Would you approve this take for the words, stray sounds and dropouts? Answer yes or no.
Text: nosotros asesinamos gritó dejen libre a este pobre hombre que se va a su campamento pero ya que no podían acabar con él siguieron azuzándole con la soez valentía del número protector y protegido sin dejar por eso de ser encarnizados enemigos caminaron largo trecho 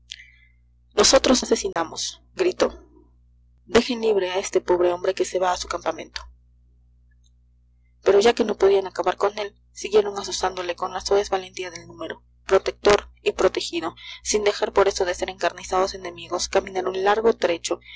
no